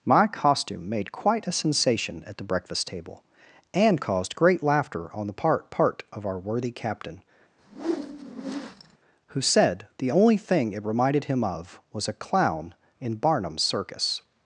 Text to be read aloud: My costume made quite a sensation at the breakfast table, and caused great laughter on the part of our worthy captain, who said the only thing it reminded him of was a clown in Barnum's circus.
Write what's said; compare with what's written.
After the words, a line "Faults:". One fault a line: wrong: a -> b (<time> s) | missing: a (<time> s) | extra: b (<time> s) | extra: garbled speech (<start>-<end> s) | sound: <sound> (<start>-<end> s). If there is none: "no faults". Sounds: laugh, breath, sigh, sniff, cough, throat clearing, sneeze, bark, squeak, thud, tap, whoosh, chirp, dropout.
My costume made quite a sensation at the breakfast table, and caused great laughter on the part part of our worthy captain, who said the only thing it reminded him of was a clown in Barnum's circus.
Faults:
extra: part (5.7 s)
sound: whoosh (7.6-9.0 s)